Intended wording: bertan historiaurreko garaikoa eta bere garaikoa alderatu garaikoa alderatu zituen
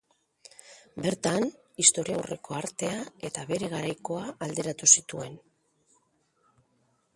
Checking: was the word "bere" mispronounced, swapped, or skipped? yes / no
no